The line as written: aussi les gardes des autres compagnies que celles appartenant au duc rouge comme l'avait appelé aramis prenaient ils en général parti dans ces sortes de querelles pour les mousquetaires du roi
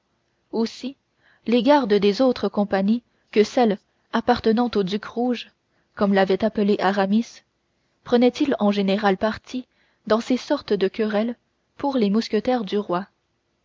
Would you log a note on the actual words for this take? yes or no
no